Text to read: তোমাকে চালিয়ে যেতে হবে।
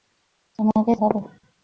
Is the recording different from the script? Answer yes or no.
yes